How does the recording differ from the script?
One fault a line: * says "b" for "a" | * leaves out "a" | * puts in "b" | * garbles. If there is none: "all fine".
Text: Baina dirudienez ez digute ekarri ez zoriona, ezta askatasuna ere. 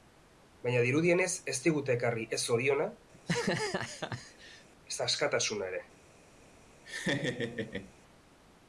all fine